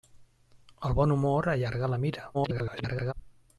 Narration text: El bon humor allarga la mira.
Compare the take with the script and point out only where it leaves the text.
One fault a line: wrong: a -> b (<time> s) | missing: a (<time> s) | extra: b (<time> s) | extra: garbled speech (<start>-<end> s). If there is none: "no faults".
extra: garbled speech (2.3-3.1 s)